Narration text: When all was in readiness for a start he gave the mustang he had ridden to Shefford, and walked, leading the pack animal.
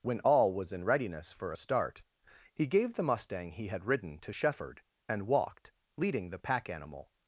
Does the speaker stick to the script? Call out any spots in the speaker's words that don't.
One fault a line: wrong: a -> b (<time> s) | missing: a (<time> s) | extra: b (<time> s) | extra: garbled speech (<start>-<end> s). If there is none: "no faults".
no faults